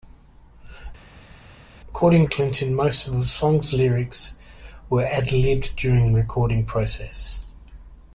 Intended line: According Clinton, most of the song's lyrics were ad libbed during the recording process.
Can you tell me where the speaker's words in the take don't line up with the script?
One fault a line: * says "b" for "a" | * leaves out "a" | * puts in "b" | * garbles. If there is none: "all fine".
all fine